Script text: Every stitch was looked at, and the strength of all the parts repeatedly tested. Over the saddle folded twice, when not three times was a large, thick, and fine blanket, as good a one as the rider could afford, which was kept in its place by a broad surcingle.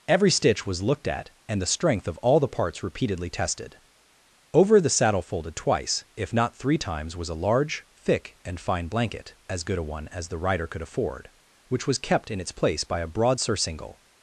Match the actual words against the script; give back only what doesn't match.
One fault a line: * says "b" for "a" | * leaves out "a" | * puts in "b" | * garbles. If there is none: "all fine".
* says "if" for "when"